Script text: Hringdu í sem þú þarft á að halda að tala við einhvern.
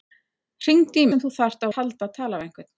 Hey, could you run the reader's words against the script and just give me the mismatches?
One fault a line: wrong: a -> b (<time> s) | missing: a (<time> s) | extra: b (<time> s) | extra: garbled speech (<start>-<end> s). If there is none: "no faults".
no faults